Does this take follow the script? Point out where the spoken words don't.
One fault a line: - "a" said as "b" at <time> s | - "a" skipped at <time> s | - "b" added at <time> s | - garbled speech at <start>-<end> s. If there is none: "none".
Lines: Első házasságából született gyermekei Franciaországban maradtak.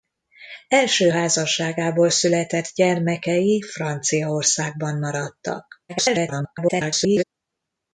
- garbled speech at 5.9-7.2 s